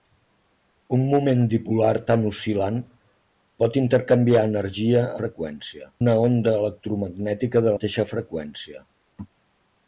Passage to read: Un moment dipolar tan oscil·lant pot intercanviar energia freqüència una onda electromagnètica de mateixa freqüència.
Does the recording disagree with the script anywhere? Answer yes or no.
no